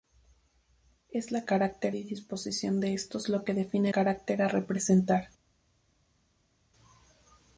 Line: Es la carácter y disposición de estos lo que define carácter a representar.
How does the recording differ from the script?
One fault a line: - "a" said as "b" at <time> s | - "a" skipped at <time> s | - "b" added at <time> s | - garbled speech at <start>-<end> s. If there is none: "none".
none